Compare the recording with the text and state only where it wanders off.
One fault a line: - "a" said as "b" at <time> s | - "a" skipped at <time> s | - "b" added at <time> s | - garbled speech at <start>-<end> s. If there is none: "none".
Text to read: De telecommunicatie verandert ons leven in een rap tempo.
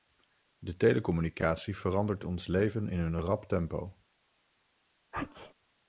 none